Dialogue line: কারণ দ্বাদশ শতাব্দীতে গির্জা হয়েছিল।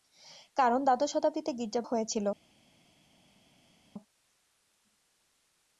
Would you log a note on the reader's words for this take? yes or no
no